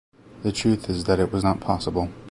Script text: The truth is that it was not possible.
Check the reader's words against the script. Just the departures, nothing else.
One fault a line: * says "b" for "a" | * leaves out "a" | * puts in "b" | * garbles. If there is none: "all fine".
all fine